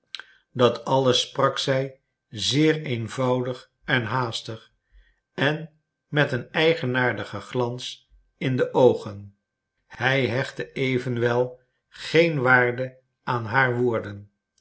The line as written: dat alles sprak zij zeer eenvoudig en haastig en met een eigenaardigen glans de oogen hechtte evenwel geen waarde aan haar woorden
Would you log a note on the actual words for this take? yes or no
yes